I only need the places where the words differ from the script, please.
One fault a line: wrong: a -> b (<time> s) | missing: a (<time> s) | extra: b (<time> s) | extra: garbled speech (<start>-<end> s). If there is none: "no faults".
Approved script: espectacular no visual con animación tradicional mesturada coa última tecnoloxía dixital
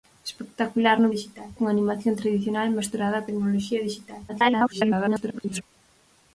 wrong: visual -> dixital (1.1 s)
missing: coa última (3.2 s)
extra: garbled speech (4.3-5.6 s)